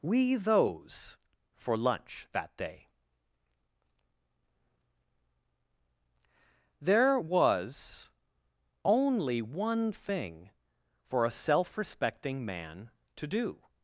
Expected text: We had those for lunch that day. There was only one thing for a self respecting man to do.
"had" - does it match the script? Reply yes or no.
no